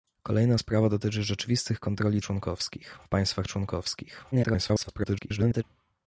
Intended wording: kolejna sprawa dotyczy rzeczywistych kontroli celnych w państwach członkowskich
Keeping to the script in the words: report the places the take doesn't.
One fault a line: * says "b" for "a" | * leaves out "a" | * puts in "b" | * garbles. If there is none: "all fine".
* says "członkowskich" for "celnych"
* garbles